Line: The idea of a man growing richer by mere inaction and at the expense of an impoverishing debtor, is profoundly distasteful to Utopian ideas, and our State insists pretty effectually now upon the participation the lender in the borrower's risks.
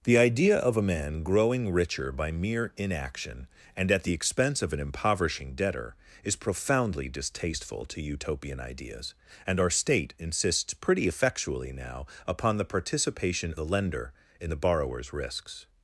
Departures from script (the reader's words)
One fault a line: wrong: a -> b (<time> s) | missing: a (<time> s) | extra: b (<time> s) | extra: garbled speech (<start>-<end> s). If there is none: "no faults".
no faults